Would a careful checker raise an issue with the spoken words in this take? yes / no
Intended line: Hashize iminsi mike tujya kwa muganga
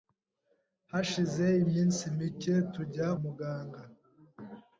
yes